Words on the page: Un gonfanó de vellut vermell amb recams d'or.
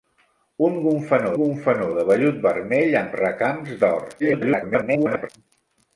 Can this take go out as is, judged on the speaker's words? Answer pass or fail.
fail